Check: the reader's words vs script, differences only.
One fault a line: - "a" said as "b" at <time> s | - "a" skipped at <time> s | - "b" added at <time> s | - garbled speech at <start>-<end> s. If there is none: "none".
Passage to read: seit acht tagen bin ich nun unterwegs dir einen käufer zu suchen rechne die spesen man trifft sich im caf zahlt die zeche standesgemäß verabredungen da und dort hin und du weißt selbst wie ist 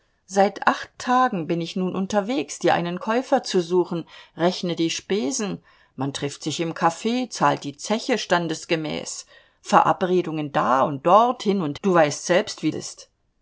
none